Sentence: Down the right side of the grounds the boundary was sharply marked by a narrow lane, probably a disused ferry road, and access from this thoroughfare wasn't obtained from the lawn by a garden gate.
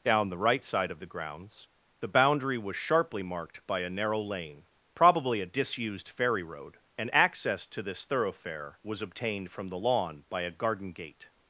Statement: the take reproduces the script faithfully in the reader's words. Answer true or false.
false